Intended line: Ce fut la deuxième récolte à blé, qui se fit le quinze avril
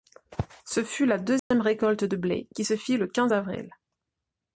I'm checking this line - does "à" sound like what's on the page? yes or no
no